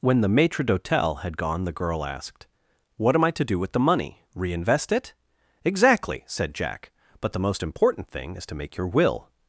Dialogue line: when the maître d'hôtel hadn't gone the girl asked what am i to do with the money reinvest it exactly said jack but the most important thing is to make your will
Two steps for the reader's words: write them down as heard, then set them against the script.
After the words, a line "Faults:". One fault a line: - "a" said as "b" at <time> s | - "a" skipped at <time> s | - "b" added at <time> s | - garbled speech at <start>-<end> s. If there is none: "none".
when the maître d'hôtel had gone the girl asked what am i to do with the money reinvest it exactly said jack but the most important thing is to make your will
Faults:
- "hadn't" said as "had" at 1.2 s